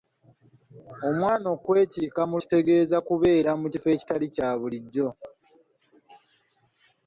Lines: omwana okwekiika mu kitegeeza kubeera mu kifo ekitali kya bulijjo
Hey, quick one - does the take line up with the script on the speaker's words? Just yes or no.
yes